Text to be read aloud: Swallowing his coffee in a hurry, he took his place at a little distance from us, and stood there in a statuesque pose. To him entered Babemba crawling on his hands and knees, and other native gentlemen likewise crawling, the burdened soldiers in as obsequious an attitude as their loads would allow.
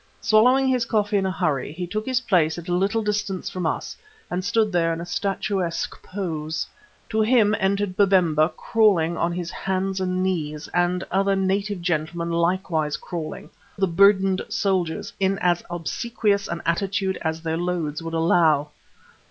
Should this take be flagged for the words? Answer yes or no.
no